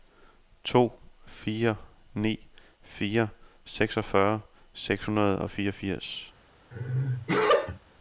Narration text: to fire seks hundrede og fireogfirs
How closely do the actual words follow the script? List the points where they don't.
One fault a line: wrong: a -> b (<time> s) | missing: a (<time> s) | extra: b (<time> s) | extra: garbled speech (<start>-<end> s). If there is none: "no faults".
extra: ni fire seksogfyrre (2.1 s)